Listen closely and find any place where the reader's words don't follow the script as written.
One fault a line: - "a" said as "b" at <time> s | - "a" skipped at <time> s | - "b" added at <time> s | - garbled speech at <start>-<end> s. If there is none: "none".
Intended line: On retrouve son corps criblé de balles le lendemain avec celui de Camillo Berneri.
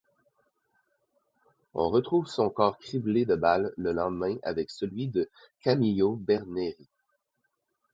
none